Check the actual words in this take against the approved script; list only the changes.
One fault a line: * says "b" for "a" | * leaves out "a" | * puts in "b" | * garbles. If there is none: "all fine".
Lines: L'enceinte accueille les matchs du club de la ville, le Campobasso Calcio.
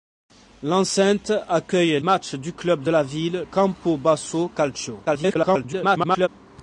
* leaves out "les"
* leaves out "le"
* garbles